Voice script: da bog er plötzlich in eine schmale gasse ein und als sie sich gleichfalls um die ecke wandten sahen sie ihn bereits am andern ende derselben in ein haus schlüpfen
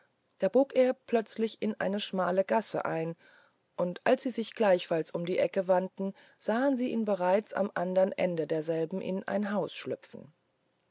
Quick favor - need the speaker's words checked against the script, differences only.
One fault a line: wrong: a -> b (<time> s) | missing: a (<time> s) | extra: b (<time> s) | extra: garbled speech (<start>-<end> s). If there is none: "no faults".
no faults